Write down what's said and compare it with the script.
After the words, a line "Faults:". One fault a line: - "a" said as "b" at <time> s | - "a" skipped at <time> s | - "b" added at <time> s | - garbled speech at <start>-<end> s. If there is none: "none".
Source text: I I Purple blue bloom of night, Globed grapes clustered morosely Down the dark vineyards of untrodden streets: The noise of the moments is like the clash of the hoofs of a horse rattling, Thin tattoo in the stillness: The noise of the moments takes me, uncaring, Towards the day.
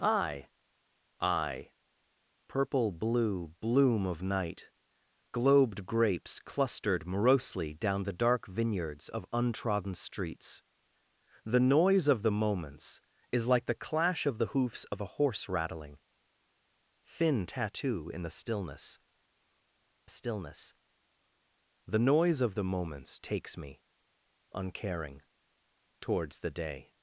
I I Purple blue bloom of night, Globed grapes clustered morosely Down the dark vineyards of untrodden streets: The noise of the moments is like the clash of the hoofs of a horse rattling, Thin tattoo in the stillness stillness: The noise of the moments takes me, uncaring, Towards the day.
Faults:
- "stillness" added at 20.1 s